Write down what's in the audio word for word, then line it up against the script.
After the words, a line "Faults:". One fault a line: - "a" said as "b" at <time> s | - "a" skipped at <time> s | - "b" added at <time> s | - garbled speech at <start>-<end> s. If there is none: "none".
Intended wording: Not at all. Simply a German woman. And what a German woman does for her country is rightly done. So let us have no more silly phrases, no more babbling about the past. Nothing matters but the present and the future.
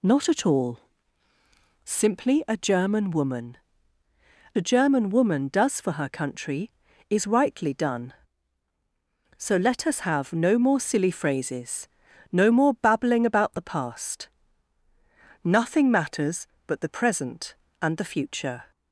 Not at all. Simply a German woman. A German woman does for her country is rightly done. So let us have no more silly phrases, no more babbling about the past. Nothing matters but the present and the future.
Faults:
- "And what" skipped at 3.6 s